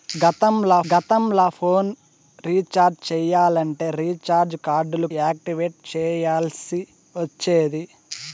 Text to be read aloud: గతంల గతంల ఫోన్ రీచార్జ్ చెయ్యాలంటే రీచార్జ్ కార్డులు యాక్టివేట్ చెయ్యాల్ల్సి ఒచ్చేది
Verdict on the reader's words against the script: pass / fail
pass